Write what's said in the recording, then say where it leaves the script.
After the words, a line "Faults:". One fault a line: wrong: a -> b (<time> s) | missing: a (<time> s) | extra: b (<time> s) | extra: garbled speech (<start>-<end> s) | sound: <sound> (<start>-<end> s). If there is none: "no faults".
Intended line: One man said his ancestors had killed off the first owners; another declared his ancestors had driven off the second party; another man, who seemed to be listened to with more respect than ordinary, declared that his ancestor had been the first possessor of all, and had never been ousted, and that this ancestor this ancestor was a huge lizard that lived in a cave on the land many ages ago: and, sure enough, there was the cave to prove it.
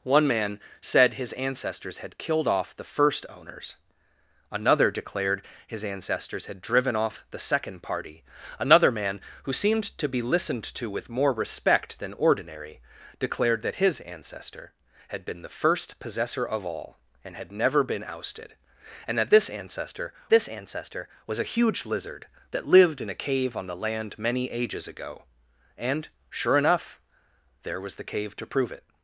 One man said his ancestors had killed off the first owners; another declared his ancestors had driven off the second party; another man, who seemed to be listened to with more respect than ordinary, declared that his ancestor had been the first possessor of all, and had never been ousted, and that this ancestor this ancestor was a huge lizard that lived in a cave on the land many ages ago: and, sure enough, there was the cave to prove it.
Faults:
no faults